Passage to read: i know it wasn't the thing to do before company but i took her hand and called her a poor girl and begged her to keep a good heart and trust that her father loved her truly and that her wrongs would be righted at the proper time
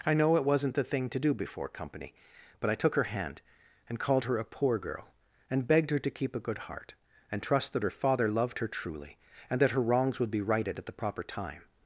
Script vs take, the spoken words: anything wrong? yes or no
no